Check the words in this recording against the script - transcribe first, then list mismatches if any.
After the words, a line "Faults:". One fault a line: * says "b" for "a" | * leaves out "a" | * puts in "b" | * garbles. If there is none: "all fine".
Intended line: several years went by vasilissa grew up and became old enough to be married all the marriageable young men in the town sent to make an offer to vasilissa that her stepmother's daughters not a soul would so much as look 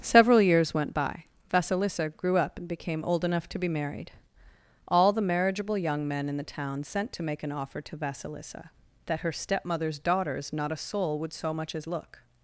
several years went by vasilissa grew up and became old enough to be married all the marriageable young men in the town sent to make an offer to vasilissa that her stepmother's daughters not a soul would so much as look
Faults:
all fine